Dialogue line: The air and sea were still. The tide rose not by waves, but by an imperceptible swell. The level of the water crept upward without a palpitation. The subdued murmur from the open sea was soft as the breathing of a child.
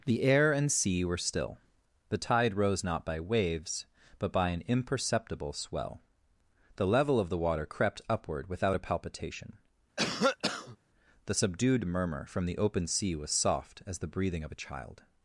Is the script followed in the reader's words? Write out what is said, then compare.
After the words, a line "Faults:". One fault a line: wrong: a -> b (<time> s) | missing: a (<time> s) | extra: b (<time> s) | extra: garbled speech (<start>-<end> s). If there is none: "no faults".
The air and sea were still. The tide rose not by waves, but by an imperceptible swell. The level of the water crept upward without a palpitation. The subdued murmur from the open sea was soft as the breathing of a child.
Faults:
no faults